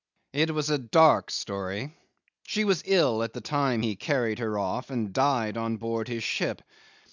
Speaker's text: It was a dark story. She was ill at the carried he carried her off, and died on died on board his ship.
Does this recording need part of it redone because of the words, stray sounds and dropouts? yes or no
yes